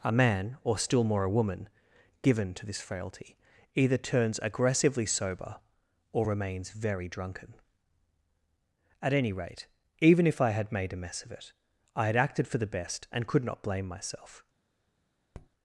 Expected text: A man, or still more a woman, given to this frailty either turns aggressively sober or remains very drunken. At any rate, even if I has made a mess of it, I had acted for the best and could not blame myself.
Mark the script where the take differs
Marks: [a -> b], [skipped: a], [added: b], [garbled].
A man, or still more a woman, given to this frailty either turns aggressively sober or remains very drunken. At any rate, even if I [has -> had] made a mess of it, I had acted for the best and could not blame myself.